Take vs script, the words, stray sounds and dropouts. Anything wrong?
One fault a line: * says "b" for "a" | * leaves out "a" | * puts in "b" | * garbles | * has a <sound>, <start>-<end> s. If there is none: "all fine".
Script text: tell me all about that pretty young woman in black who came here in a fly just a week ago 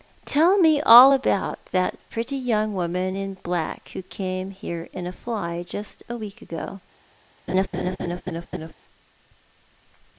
* has a laugh, 7.5-8.7 s